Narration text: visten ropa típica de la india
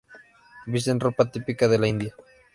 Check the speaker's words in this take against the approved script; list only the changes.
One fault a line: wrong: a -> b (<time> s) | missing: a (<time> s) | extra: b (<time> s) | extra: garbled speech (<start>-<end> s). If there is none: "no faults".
no faults